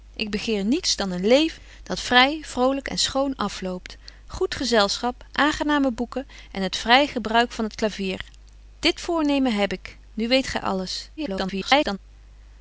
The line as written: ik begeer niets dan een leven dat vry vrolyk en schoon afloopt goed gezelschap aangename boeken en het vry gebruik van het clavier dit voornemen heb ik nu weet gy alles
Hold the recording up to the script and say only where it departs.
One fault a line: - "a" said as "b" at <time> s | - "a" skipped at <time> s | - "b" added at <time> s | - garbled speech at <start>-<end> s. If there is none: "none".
- garbled speech at 11.2-12.0 s